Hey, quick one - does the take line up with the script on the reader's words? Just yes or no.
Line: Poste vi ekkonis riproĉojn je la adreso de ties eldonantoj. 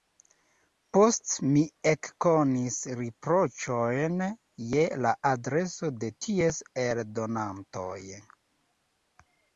no